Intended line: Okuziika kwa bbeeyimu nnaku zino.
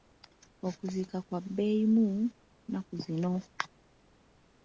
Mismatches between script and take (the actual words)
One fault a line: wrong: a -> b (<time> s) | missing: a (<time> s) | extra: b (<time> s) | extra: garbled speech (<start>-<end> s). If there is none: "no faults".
no faults